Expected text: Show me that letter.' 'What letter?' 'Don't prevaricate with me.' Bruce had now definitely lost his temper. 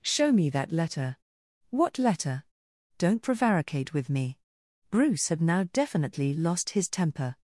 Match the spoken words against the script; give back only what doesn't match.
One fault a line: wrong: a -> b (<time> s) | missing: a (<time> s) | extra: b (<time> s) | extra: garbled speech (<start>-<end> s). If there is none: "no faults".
no faults